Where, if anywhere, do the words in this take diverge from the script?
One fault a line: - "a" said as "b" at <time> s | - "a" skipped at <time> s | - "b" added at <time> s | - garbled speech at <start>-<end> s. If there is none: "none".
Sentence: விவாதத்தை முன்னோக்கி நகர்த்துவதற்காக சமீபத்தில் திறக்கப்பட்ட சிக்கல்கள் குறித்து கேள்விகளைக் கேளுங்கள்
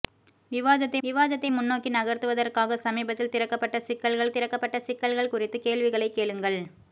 - "விவாதத்தை" added at 1.0 s
- "திறக்கப்பட்ட சிக்கல்கள்" added at 4.3 s